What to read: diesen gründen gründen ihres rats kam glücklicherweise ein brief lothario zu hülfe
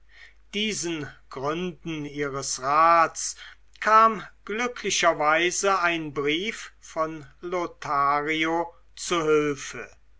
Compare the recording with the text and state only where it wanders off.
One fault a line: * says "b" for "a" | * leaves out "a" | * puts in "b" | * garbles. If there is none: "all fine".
* leaves out "gründen"
* puts in "von"